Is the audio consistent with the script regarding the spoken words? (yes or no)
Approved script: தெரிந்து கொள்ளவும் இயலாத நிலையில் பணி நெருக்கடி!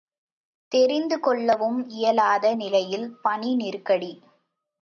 yes